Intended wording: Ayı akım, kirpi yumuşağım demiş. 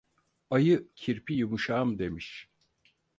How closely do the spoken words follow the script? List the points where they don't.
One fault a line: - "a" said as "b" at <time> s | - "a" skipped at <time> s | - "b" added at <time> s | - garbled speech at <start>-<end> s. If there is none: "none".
- "akım" skipped at 0.9 s